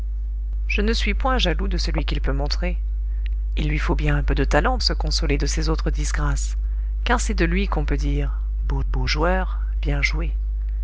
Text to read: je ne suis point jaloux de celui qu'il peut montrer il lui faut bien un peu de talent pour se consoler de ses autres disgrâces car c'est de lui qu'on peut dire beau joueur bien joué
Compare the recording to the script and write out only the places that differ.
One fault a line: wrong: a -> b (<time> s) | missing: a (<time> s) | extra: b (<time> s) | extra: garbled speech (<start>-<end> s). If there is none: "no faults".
missing: pour (4.8 s)
extra: beau (8.9 s)